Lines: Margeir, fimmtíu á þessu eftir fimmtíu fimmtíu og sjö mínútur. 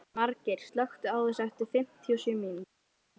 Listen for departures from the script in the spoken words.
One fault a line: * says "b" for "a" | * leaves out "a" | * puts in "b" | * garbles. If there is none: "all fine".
* says "slökktu" for "fimmtíu"
* leaves out "fimmtíu"